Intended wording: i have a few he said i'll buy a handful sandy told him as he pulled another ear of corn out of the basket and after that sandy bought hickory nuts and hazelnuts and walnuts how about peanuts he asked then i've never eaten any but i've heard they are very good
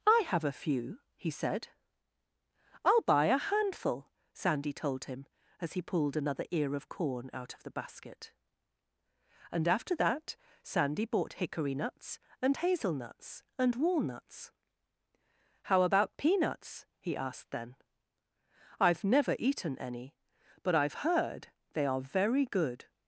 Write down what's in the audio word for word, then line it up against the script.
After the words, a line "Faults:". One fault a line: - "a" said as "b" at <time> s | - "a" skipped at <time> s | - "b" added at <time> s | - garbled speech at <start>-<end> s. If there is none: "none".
i have a few he said i'll buy a handful sandy told him as he pulled another ear of corn out of the basket and after that sandy bought hickory nuts and hazelnuts and walnuts how about peanuts he asked then i've never eaten any but i've heard they are very good
Faults:
none